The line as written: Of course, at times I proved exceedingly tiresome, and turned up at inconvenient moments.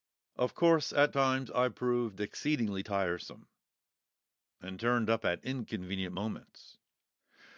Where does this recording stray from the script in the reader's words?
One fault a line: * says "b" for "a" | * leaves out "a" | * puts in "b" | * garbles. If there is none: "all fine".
all fine